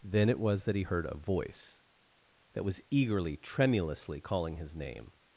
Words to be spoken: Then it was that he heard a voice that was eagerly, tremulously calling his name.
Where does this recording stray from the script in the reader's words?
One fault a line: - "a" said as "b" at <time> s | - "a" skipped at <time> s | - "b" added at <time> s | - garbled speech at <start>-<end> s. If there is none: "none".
none